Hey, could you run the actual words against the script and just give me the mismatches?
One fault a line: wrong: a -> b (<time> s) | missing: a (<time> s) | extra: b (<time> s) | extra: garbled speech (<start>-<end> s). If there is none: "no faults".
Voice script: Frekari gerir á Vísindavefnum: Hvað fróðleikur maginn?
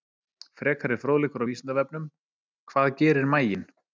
wrong: gerir -> fróðleikur (1.0 s)
wrong: fróðleikur -> gerir (3.0 s)